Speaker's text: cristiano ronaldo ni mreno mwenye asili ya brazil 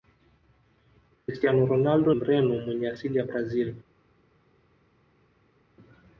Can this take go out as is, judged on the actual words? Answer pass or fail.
fail